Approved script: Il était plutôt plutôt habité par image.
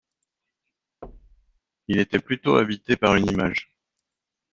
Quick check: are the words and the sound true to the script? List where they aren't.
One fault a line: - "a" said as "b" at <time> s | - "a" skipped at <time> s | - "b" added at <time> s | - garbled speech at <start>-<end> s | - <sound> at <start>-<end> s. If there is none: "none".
- thud at 1.0-1.6 s
- "plutôt" skipped at 2.5 s
- "une" added at 3.2 s